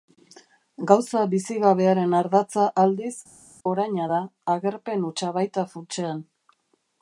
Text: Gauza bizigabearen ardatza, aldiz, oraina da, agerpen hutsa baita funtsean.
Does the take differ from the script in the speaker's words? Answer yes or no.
no